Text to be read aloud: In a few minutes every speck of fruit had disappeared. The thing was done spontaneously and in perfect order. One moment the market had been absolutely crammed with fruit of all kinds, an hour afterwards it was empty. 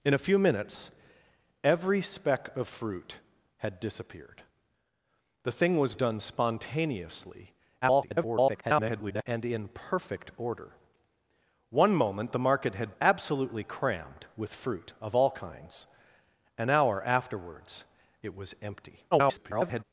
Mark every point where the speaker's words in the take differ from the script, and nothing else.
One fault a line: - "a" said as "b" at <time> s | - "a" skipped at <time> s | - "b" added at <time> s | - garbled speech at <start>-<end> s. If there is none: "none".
- garbled speech at 7.8-9.2 s
- "been" skipped at 12.9 s
- garbled speech at 19.1-19.8 s